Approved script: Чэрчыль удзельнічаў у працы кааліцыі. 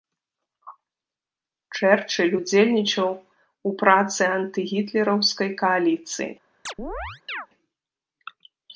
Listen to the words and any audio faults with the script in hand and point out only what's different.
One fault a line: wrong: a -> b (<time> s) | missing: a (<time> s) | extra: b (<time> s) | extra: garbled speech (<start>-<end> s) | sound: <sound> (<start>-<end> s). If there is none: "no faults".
extra: антыгітлераўскай (4.4 s)
sound: chirp (6.7-7.5 s)